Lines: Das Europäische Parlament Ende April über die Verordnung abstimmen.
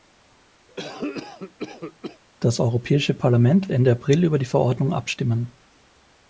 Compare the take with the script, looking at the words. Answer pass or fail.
pass